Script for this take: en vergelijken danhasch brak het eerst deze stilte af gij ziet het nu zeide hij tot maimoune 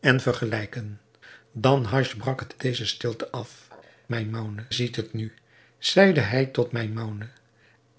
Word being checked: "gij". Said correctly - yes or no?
no